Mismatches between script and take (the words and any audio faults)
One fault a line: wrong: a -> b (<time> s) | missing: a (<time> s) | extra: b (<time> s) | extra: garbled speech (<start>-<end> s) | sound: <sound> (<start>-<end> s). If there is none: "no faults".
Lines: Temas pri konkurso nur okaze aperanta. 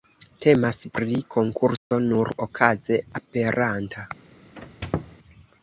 sound: dropout (1.8-1.9 s)
sound: squeak (4.6-5.2 s)